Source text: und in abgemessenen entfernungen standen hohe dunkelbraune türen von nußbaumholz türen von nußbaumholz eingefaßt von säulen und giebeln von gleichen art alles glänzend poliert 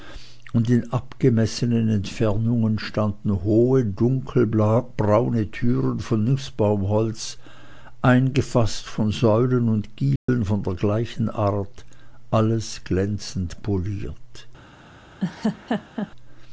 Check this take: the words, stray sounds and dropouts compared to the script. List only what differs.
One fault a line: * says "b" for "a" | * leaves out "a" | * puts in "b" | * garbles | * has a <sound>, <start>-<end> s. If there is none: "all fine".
* leaves out "türen von nußbaumholz"
* has a dropout, 10.2-10.3 s
* puts in "der"
* has a laugh, 15.2-16.1 s